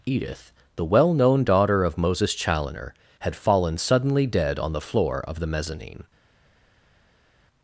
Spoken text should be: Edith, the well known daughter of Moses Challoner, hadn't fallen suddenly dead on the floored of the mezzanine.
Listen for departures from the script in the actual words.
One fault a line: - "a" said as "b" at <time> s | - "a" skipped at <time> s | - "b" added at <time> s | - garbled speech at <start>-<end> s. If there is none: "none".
- "hadn't" said as "had" at 3.2 s
- "floored" said as "floor" at 4.8 s